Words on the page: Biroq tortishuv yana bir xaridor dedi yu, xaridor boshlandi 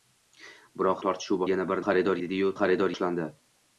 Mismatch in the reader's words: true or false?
false